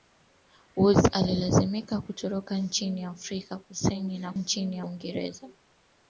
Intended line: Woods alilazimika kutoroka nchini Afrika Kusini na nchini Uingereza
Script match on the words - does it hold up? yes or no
yes